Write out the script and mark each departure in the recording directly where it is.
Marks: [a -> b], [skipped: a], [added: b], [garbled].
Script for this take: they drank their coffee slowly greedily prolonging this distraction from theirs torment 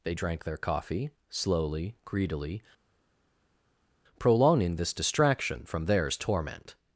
they drank their coffee slowly greedily prolonging this distraction from theirs torment